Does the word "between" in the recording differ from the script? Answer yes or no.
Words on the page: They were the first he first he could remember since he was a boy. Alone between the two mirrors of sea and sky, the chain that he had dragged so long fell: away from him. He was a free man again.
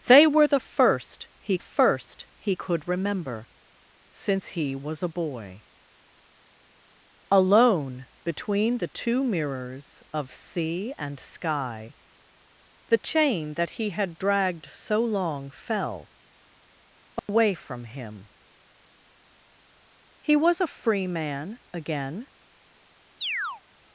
no